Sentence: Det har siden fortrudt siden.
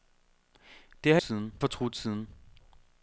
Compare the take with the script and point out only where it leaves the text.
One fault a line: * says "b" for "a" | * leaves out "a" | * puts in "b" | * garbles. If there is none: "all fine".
all fine